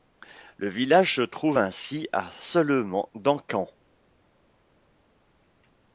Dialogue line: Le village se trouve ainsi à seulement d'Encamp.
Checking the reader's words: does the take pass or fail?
pass